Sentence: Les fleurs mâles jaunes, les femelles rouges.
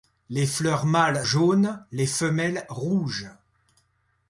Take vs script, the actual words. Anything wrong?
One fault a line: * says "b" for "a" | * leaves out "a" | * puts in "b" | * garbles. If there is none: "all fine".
all fine